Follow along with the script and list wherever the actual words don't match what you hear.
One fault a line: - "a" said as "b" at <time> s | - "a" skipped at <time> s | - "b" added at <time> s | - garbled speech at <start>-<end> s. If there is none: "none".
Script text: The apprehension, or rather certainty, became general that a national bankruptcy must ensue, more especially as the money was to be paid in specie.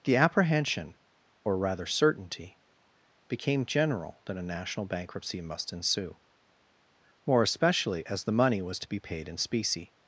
none